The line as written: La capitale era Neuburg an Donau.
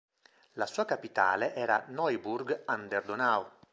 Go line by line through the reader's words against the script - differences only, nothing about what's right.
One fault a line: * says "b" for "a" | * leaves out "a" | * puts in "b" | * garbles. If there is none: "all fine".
* puts in "sua"
* puts in "der"